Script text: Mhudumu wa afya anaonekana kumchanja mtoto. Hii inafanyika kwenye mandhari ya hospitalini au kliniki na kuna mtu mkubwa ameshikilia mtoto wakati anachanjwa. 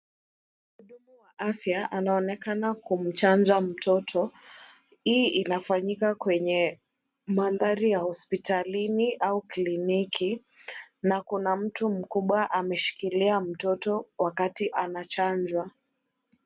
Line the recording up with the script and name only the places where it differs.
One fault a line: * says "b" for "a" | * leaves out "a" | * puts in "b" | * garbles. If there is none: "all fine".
all fine